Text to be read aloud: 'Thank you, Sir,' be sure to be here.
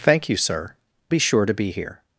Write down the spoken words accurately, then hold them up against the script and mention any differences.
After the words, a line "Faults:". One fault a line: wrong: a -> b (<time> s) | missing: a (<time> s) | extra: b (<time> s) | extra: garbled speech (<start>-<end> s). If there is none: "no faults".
'Thank you, Sir,' be sure to be here.
Faults:
no faults